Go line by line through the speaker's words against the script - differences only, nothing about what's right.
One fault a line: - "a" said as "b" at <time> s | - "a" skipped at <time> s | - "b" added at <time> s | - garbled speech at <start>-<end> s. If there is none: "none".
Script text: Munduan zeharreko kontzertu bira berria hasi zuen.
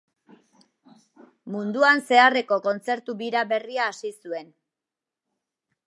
none